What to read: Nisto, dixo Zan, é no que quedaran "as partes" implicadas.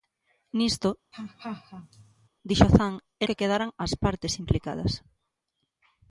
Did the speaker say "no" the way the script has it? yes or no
no